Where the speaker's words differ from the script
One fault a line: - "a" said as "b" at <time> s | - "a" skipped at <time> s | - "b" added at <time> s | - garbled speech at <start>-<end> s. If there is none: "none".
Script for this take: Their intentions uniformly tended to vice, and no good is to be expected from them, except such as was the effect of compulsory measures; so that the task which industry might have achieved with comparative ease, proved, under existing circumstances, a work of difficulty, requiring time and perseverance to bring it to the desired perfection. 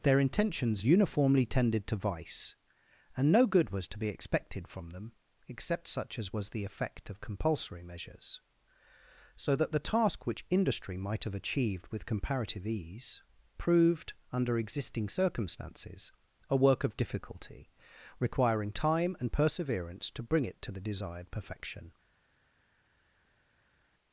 - "is" said as "was" at 3.7 s